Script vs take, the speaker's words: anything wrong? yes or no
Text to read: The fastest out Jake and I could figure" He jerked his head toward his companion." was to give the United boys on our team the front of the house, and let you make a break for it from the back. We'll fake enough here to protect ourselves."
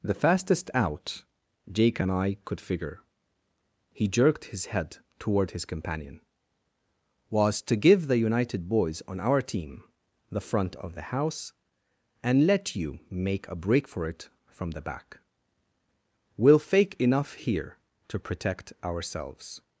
no